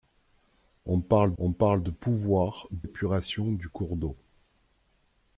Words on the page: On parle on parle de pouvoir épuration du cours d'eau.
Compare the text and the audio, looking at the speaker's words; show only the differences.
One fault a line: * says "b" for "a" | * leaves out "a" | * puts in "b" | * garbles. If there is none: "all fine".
all fine